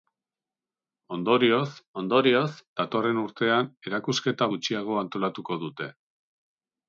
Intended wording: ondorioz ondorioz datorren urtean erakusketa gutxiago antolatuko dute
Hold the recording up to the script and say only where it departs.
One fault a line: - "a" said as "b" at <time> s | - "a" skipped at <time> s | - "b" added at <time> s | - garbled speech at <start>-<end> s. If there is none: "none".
none